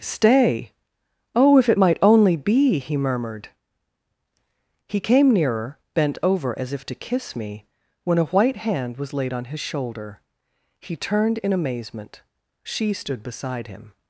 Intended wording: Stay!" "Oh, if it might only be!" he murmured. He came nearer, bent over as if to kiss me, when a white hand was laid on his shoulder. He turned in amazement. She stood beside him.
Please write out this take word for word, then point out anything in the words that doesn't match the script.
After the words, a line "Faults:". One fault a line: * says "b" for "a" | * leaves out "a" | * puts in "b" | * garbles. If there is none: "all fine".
Stay!" "Oh, if it might only be!" he murmured. He came nearer, bent over as if to kiss me, when a white hand was laid on his shoulder. He turned in amazement. She stood beside him.
Faults:
all fine